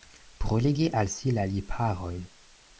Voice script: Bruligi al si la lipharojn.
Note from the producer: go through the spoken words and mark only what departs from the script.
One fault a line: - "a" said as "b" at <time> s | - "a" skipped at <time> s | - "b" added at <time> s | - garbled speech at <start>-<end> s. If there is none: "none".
none